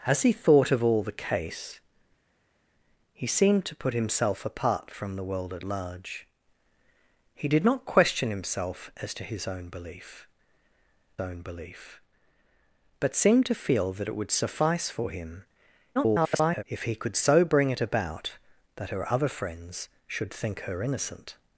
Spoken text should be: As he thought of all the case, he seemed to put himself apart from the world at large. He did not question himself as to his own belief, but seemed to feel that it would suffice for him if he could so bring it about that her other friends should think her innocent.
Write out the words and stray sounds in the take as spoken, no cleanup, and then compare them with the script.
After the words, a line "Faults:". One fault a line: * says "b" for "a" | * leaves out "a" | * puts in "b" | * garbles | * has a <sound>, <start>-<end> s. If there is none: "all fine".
As he thought of all the case, he seemed to put himself apart from the world at large. He did not question himself as to his own belief own belief, but seemed to feel that it would suffice for him [garbled] if he could so bring it about that her other friends should think her innocent.
Faults:
* puts in "own belief"
* garbles